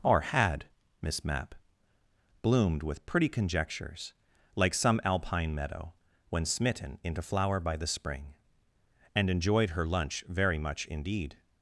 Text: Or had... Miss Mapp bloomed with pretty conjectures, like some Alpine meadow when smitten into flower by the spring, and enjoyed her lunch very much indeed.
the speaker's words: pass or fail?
pass